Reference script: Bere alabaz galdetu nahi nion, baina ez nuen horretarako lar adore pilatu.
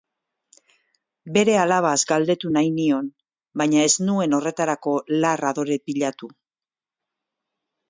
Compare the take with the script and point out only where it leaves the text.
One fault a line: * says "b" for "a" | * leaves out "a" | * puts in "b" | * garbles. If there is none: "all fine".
all fine